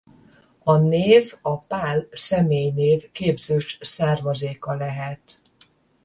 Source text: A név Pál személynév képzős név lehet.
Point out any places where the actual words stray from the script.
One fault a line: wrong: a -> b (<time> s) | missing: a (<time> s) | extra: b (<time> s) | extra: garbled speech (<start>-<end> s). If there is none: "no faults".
extra: a (1.4 s)
wrong: név -> származéka (3.8 s)